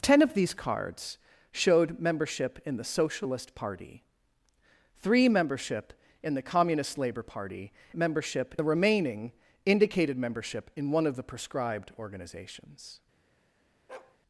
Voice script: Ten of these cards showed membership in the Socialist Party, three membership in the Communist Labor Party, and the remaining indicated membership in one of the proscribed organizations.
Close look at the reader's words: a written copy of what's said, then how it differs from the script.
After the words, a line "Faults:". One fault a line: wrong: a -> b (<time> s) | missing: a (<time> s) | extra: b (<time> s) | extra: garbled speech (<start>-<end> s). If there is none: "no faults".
Ten of these cards showed membership in the Socialist Party, three membership in the Communist Labor Party, membership the remaining indicated membership in one of the proscribed organizations.
Faults:
wrong: and -> membership (7.9 s)